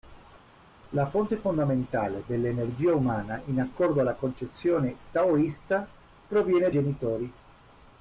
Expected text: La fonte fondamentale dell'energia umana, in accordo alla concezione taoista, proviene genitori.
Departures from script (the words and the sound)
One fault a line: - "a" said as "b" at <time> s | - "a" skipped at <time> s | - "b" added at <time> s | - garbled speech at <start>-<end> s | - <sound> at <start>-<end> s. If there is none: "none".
none